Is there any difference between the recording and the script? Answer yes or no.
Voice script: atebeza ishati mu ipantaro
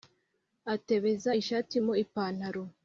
no